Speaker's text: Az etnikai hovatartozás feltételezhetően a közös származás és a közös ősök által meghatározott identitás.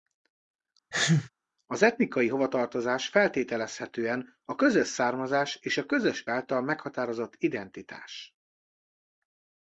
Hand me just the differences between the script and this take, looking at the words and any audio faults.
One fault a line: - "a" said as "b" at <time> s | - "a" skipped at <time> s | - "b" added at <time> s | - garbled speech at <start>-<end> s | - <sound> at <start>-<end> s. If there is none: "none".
- sneeze at 0.9-1.3 s
- "ősök" skipped at 6.2 s